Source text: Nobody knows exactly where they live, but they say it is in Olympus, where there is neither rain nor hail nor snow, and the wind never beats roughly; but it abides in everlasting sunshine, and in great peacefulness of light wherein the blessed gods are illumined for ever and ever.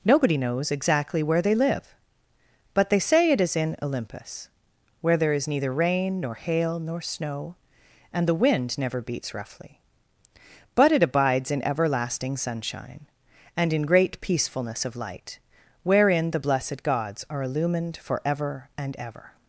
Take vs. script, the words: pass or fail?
pass